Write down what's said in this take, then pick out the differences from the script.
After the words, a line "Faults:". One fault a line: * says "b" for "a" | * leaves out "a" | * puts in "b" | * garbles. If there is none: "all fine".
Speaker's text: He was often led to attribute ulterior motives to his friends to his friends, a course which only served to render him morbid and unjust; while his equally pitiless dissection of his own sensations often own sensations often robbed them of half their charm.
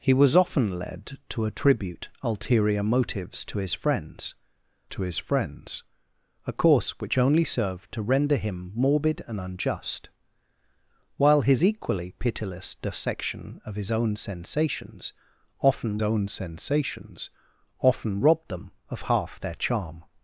He was often led to attribute ulterior motives to his friends to his friends, a course which only served to render him morbid and unjust; while his equally pitiless dissection of his own sensations often own sensations often robbed them of half their charm.
Faults:
all fine